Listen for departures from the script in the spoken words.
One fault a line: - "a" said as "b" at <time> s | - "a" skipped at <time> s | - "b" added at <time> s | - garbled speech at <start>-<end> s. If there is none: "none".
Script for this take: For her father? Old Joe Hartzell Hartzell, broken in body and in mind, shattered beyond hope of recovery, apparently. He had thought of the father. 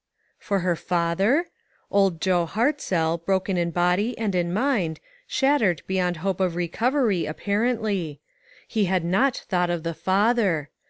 - "Hartzell" skipped at 3.2 s
- "not" added at 9.0 s